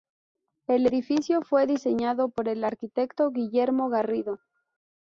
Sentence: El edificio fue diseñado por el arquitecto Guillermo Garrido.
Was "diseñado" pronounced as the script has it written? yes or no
yes